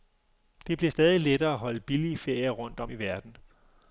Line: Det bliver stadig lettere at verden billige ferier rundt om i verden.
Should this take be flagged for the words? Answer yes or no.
yes